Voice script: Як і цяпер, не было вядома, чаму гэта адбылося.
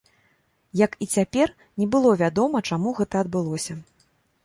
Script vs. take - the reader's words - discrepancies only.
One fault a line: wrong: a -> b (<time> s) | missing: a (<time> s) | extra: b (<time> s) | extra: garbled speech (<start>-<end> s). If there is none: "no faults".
no faults